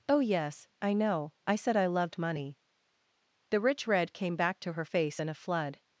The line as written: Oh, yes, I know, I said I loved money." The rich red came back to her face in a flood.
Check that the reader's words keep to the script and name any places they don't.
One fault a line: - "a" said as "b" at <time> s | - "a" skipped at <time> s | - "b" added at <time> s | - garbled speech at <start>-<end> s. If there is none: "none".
none